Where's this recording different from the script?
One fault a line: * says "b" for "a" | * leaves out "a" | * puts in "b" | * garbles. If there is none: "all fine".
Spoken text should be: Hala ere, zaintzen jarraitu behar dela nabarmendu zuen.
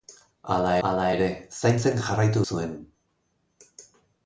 * puts in "hala"
* leaves out "behar dela nabarmendu"